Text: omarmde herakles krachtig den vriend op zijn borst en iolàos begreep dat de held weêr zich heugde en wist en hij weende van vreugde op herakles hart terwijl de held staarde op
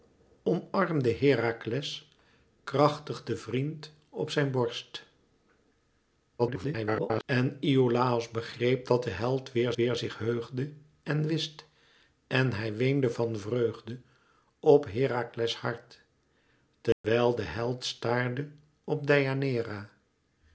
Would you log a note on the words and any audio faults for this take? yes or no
yes